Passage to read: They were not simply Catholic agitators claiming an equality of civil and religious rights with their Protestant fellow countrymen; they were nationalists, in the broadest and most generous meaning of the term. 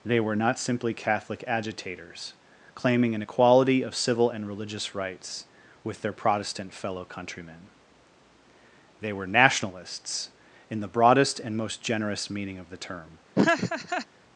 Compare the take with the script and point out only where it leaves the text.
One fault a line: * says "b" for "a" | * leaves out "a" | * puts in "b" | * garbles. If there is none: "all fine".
all fine